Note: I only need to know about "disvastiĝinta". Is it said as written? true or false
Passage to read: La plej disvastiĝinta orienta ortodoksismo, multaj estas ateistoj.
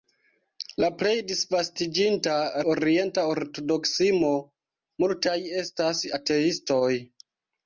true